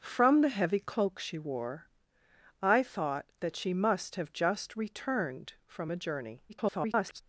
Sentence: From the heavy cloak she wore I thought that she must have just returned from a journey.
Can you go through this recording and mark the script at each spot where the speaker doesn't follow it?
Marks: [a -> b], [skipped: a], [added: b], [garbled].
From the heavy cloak she wore I thought that she must have just returned from a journey. [garbled]